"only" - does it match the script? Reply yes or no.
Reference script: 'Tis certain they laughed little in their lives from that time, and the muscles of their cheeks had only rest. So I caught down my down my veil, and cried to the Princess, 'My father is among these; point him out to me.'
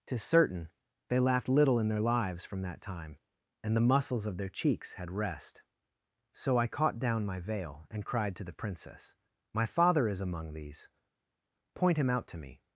no